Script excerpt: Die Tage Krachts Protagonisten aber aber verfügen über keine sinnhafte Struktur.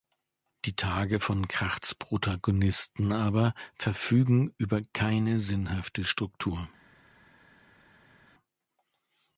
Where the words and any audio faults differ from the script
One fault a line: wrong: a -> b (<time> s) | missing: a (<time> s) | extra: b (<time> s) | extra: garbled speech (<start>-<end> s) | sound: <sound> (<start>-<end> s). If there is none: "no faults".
extra: von (1.2 s)
missing: aber (3.5 s)